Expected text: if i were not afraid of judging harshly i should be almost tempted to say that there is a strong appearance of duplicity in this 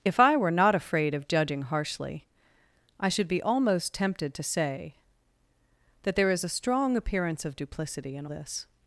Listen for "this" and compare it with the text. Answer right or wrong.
right